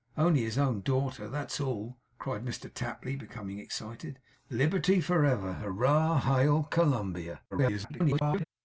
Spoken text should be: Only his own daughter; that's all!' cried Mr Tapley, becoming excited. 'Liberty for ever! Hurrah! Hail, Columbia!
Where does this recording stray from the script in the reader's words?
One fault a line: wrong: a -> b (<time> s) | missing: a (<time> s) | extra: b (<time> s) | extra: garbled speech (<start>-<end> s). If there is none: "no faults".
extra: garbled speech (7.5-8.4 s)